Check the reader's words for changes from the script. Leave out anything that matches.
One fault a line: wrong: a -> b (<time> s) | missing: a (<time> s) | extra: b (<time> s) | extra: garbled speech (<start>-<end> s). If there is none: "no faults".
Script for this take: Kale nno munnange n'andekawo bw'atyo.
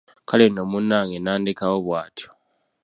no faults